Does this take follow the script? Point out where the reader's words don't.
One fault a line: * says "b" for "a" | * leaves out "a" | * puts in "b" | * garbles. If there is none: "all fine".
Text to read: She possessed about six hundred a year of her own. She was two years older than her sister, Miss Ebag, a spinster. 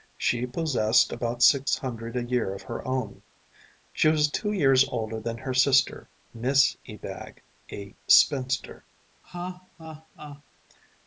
all fine